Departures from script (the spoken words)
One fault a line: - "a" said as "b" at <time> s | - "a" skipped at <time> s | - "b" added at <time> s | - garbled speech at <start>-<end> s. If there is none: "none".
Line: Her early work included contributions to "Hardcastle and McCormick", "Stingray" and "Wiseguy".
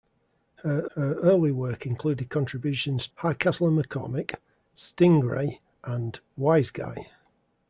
- "her" added at 1.0 s
- "to" skipped at 3.1 s